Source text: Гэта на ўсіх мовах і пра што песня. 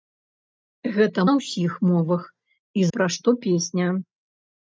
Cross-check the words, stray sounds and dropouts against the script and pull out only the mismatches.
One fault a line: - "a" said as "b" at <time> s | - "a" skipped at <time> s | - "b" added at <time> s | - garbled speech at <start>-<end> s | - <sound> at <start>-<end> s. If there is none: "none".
none